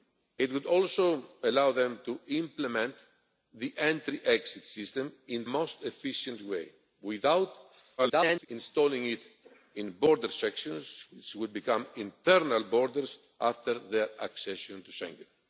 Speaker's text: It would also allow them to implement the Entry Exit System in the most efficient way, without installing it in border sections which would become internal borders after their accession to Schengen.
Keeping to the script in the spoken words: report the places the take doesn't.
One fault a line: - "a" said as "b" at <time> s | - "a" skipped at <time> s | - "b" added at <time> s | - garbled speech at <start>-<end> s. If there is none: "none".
- "the" skipped at 5.5 s
- garbled speech at 8.0-8.5 s